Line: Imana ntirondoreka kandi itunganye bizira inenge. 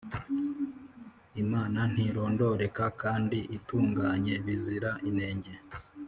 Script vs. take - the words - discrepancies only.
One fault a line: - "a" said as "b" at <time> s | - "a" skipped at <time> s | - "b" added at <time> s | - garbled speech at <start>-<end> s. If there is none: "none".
none